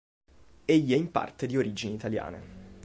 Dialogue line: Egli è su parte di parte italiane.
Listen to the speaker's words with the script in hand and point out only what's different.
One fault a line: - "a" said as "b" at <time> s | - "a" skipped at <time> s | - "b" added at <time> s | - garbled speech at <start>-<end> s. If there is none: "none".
- "su" said as "in" at 0.9 s
- "parte" said as "origini" at 1.6 s